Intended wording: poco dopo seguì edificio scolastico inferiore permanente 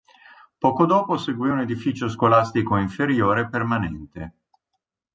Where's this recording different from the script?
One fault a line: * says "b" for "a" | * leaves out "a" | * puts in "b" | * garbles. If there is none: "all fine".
* puts in "un"